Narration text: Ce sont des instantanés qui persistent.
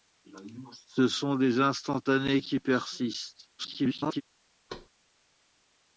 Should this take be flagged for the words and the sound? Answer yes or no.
yes